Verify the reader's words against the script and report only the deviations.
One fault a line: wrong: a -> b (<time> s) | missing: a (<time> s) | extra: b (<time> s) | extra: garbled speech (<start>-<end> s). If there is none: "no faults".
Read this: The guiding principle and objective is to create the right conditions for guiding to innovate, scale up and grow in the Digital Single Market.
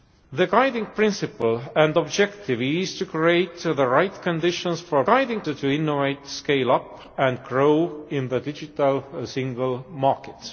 no faults